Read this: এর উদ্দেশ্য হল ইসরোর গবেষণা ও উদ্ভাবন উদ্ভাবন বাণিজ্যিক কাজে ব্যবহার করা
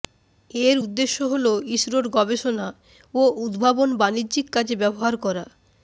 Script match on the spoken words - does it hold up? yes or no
no